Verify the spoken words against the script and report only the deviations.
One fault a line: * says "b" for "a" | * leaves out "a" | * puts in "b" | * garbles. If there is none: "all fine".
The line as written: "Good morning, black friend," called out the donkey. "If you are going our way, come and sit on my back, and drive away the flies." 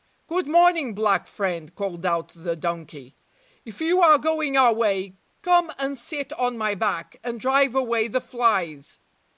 all fine